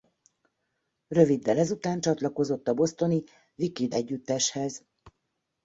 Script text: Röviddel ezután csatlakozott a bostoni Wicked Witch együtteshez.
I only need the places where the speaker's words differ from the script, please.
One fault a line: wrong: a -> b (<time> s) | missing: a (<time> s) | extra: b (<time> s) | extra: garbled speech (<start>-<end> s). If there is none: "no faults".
missing: Witch (3.9 s)